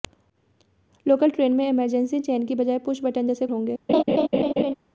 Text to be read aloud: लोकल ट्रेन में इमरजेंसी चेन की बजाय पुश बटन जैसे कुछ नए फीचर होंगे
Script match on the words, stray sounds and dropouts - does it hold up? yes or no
no